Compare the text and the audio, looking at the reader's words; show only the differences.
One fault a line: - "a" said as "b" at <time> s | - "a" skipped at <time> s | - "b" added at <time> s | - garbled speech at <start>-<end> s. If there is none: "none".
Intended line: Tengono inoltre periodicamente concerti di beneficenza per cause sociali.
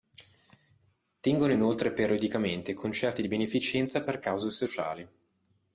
none